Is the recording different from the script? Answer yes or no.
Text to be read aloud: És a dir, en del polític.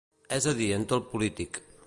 no